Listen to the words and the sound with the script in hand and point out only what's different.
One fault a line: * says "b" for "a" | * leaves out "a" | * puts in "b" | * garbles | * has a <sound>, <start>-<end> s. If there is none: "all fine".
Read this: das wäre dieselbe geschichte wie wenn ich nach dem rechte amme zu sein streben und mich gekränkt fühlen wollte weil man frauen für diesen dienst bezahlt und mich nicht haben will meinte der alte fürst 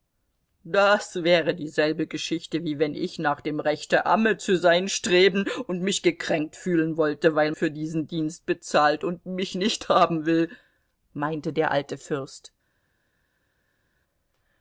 * leaves out "man frauen"